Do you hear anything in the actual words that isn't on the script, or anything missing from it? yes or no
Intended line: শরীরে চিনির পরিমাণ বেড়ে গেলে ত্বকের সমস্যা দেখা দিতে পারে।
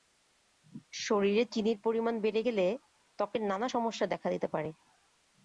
yes